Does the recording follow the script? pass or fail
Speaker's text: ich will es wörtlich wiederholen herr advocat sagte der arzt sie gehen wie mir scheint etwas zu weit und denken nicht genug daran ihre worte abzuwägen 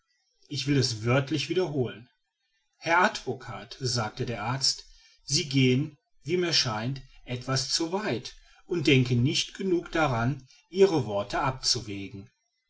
pass